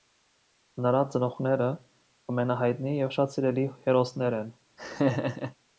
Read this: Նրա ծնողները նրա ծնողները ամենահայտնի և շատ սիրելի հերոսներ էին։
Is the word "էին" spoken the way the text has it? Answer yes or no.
no